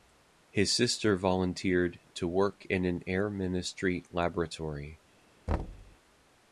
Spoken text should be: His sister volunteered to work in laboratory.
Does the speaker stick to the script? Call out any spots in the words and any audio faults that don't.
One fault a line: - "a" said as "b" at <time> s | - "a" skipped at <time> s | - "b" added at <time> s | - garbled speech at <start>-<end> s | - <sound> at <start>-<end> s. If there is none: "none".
- "an air ministry" added at 2.9 s
- thud at 5.5-6.0 s